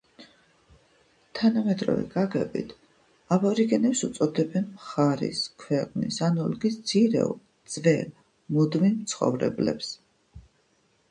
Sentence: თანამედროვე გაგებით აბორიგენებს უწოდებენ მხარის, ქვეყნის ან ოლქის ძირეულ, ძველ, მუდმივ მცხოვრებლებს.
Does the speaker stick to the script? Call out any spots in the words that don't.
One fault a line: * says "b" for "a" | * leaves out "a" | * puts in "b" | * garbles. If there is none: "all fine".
all fine